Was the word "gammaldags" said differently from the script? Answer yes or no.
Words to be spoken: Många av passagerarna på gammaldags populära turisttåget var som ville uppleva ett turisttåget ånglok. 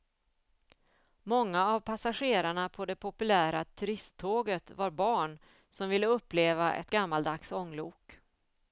yes